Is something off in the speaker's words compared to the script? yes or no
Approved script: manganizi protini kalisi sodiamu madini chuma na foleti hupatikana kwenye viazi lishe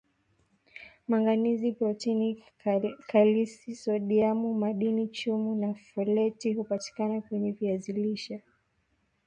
no